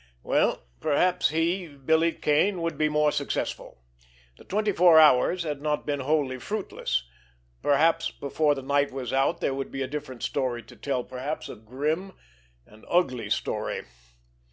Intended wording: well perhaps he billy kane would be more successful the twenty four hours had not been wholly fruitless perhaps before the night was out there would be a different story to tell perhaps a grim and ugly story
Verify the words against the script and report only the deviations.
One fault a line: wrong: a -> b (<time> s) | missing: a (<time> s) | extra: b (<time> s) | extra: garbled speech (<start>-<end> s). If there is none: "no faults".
no faults